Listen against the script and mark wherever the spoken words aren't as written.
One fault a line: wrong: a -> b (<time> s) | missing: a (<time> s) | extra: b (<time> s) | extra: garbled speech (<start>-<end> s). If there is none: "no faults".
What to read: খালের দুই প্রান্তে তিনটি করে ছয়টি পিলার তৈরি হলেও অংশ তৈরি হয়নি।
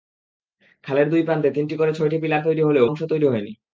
no faults